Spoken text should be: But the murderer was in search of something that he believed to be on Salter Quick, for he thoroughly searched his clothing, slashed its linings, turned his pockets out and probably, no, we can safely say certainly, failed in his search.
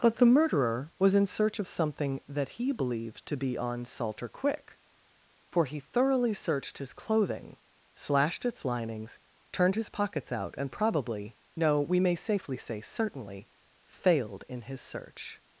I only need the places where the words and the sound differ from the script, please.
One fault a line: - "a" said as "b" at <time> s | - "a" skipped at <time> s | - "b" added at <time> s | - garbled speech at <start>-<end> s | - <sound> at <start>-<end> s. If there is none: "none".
- "can" said as "may" at 12.0 s